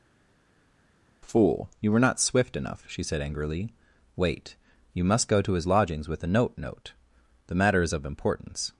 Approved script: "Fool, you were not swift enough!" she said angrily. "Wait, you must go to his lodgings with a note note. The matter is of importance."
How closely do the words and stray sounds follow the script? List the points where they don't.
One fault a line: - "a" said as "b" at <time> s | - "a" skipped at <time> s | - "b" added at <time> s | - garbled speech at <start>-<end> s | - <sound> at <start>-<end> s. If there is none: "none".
none